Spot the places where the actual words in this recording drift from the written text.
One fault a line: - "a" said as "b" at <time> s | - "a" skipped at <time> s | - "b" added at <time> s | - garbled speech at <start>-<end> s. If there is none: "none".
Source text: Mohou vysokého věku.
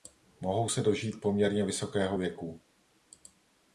- "se dožít poměrně" added at 0.7 s